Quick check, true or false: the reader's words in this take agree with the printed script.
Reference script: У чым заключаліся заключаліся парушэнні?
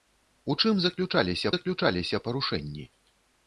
true